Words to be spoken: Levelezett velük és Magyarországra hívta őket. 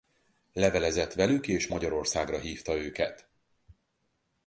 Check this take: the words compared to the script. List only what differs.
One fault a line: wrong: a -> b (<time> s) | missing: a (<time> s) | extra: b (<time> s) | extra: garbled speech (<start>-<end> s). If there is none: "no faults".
no faults